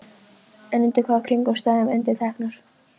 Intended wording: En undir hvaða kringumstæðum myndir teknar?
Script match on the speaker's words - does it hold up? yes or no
yes